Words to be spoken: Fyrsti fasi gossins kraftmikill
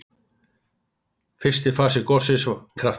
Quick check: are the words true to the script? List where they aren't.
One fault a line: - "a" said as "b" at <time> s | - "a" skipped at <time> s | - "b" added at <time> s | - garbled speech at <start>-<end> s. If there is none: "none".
none